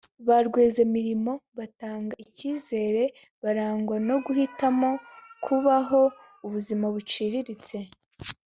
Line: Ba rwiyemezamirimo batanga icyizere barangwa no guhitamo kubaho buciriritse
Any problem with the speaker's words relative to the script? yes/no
yes